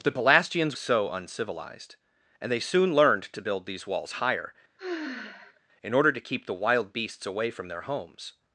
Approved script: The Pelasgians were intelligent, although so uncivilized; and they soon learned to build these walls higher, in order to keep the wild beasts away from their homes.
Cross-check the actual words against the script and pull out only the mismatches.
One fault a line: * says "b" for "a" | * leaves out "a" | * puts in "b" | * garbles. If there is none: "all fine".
* leaves out "were intelligent although"